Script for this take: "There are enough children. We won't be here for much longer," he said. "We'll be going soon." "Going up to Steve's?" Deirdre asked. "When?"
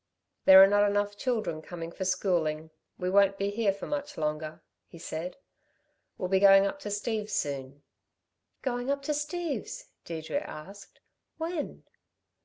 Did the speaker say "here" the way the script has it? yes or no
yes